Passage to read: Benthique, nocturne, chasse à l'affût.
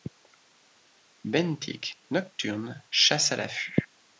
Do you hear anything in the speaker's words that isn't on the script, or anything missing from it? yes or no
no